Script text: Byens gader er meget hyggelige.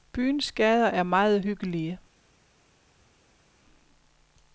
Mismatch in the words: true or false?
false